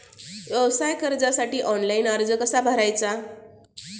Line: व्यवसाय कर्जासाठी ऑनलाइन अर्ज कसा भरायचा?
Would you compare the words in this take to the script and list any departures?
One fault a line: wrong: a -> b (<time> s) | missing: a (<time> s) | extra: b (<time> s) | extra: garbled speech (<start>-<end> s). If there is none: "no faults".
no faults